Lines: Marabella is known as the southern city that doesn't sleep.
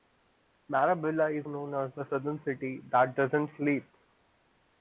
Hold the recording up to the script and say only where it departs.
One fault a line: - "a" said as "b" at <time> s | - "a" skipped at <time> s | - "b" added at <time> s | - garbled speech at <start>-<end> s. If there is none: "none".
none